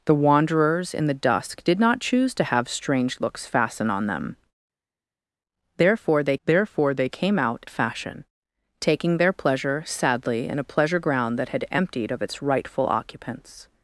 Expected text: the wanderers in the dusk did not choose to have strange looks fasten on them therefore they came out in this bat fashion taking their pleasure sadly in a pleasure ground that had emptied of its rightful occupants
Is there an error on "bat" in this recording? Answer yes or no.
yes